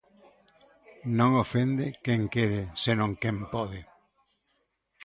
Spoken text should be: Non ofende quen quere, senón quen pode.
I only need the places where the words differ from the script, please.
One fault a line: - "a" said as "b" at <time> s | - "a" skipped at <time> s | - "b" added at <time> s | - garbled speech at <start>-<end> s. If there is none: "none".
none